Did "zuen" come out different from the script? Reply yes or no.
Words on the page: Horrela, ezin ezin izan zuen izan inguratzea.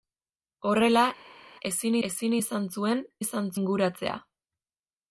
no